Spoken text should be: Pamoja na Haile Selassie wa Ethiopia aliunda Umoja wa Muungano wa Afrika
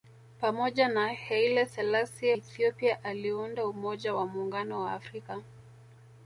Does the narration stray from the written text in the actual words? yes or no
yes